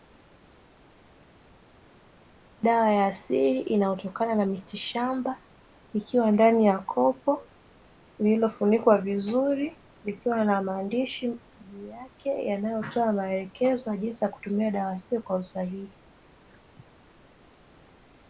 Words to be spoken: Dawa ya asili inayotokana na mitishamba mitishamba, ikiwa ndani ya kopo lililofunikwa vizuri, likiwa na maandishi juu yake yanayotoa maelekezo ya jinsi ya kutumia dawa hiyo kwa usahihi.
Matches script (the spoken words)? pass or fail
fail